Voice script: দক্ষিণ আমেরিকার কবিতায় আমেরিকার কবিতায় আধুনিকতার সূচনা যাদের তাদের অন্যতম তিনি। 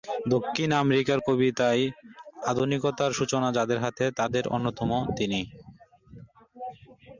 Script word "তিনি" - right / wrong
right